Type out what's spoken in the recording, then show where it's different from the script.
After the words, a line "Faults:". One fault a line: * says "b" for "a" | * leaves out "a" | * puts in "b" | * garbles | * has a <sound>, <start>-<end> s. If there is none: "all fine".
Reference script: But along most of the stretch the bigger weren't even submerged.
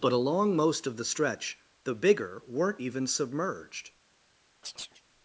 But along most of the stretch the bigger weren't even submerged.
Faults:
* has a chirp, 4.6-5.0 s